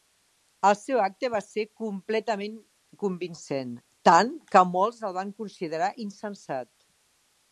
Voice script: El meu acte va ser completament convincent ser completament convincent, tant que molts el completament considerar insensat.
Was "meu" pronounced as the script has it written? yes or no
no